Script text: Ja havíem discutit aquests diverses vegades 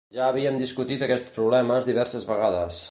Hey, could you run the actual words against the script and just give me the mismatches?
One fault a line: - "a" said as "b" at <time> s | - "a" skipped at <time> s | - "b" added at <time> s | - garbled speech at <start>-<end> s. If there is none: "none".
- "problemes" added at 1.4 s